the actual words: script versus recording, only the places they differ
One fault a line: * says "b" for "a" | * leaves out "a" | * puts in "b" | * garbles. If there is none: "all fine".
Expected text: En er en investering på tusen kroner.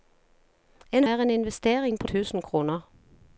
all fine